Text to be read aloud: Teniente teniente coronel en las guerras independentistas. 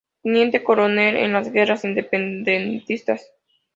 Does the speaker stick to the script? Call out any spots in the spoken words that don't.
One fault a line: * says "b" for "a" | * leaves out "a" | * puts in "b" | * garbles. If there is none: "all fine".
* leaves out "teniente"